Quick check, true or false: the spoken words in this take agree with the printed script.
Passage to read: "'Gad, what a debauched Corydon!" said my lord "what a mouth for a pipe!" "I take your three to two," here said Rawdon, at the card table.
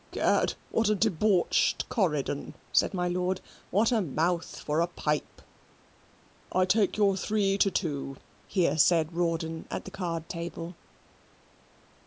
true